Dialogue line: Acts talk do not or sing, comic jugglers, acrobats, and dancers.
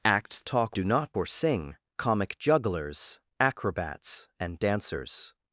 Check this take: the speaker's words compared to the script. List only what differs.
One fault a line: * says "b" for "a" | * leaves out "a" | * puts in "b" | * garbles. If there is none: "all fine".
all fine